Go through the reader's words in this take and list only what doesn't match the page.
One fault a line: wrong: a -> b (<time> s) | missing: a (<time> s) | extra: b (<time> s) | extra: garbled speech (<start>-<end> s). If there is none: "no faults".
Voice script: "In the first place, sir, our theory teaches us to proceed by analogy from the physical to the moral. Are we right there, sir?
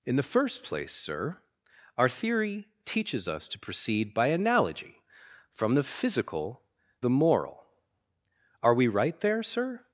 missing: to (6.6 s)